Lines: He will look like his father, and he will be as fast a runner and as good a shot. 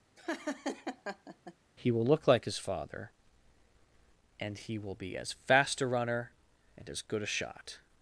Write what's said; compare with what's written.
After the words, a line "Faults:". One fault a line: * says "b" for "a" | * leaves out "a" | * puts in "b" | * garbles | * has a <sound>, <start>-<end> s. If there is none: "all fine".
He will look like his father, and he will be as fast a runner and as good a shot.
Faults:
* has a laugh, 0.2-1.5 s